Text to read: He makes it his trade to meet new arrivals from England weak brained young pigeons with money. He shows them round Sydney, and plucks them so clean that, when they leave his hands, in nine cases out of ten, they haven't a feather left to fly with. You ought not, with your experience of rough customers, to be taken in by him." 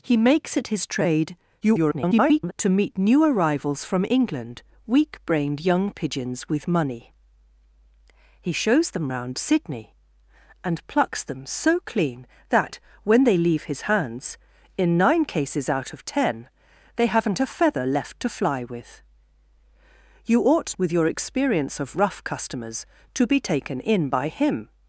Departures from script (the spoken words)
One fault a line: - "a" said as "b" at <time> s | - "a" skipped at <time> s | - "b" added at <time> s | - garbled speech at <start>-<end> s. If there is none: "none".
- garbled speech at 1.6-2.5 s
- "not" skipped at 20.8 s